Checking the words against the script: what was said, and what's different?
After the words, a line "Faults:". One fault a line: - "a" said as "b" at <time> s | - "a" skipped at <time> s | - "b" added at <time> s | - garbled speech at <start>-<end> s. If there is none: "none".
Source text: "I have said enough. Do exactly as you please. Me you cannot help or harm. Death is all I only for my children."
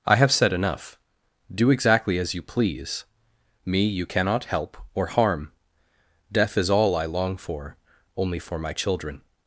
"I have said enough. Do exactly as you please. Me you cannot help or harm. Death is all I long for, only for my children."
Faults:
- "long for" added at 7.1 s